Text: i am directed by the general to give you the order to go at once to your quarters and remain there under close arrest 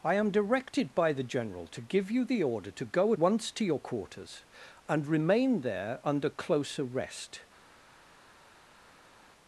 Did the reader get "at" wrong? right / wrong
wrong